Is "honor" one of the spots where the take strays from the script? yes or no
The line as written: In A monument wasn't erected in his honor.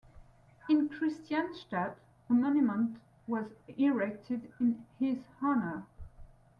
no